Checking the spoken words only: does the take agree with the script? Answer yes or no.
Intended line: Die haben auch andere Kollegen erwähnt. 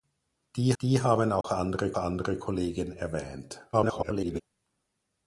no